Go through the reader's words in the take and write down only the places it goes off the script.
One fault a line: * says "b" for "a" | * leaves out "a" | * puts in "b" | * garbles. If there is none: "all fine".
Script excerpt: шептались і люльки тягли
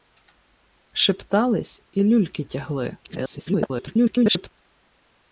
* garbles